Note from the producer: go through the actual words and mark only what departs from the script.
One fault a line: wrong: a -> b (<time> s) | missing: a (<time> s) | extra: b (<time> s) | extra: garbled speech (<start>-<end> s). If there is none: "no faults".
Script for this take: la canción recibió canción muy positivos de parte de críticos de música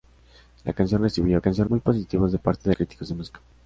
no faults